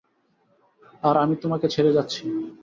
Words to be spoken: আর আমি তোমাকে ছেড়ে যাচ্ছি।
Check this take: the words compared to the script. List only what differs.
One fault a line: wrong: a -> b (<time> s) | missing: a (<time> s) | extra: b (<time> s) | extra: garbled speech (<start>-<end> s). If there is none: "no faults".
no faults